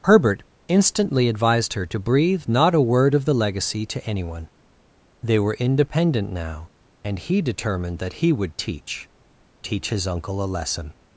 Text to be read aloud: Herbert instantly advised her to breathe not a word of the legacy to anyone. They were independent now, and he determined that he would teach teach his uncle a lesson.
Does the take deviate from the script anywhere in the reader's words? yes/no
no